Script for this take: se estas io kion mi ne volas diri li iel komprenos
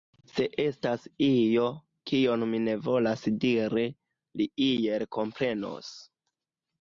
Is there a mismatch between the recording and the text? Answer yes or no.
no